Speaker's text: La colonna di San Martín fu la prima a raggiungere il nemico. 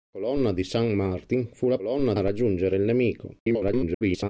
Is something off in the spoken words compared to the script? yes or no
yes